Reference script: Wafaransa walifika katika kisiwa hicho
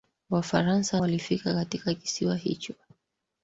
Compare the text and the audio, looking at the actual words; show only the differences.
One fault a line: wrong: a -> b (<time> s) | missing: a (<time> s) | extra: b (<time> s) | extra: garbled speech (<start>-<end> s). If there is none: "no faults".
no faults